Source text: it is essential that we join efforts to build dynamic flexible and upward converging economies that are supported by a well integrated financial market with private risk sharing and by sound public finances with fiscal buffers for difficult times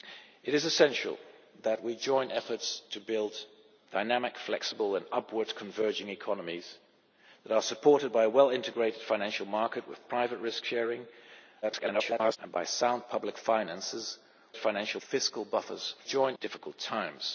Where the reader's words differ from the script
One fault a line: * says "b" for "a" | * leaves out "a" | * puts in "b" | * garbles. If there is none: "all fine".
* garbles
* says "financial" for "with"
* says "join" for "for"